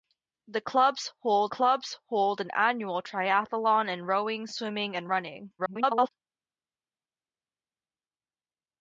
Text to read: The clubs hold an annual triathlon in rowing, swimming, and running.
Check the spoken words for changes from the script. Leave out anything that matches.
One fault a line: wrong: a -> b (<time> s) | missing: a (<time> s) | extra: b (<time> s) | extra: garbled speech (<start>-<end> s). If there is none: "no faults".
extra: clubs hold (1.5 s)
extra: garbled speech (5.6-6.1 s)